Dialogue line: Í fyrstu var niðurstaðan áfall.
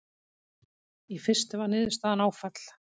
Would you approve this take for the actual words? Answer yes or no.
yes